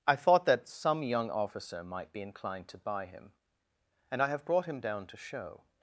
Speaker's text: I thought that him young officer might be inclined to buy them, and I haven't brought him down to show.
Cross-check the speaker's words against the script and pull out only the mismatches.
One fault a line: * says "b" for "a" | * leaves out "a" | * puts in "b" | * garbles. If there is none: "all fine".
* says "some" for "him"
* says "him" for "them"
* says "have" for "haven't"